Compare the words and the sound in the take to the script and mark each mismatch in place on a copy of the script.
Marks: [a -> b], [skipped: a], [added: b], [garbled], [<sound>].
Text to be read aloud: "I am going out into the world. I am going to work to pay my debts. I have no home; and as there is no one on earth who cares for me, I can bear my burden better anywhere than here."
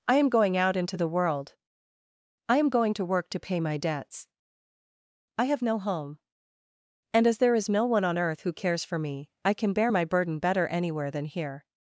"I am going out into the world. I am going to work to pay my debts. I have no home; and as there is no one on earth who cares for me, I can bear my burden better anywhere than here."